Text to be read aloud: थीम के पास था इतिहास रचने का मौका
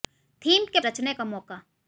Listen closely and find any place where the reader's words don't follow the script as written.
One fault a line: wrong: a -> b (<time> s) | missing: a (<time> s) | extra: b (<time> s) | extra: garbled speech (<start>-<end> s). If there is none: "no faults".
missing: पास था इतिहास (0.8 s)